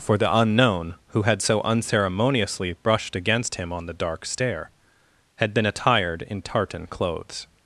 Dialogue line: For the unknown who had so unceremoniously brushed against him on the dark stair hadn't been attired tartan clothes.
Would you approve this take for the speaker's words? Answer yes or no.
no